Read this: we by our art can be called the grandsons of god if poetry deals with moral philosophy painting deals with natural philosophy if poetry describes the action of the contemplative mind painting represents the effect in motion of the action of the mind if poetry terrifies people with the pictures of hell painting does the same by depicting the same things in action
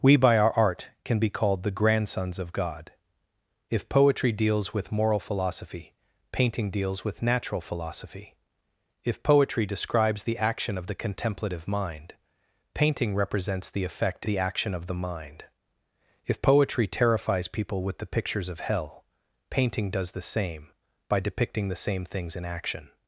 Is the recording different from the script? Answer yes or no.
yes